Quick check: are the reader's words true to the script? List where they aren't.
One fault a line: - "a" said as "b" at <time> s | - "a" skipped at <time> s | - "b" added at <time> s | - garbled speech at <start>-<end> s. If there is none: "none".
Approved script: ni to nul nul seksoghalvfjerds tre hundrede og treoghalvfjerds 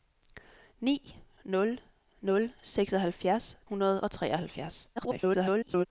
- "to" skipped at 1.2 s
- "tre" skipped at 3.6 s
- garbled speech at 5.0-5.9 s